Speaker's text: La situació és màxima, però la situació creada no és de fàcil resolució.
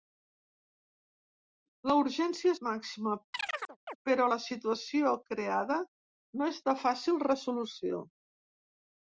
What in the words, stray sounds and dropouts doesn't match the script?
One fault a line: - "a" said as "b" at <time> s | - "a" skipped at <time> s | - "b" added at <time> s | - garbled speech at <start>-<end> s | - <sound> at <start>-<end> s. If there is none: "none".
- "situació" said as "urgència" at 2.0 s
- chirp at 3.3-4.0 s